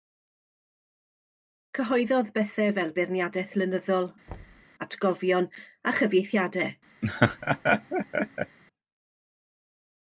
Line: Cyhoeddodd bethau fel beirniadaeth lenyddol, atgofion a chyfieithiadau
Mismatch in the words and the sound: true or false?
true